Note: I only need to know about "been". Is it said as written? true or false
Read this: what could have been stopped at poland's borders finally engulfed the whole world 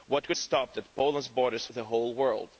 false